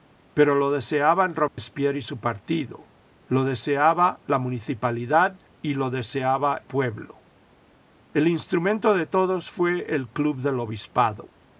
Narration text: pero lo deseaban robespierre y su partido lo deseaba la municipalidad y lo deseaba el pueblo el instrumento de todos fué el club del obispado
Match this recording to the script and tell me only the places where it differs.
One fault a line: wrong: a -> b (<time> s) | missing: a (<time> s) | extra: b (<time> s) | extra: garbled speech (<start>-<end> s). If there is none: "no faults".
missing: el (6.6 s)